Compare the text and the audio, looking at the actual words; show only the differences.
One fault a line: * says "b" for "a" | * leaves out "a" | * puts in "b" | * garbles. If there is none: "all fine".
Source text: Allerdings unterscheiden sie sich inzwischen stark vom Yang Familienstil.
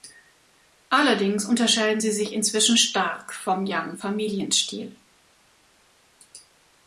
all fine